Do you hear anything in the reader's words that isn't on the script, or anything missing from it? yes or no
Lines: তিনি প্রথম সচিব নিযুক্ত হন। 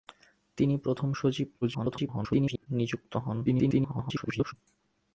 yes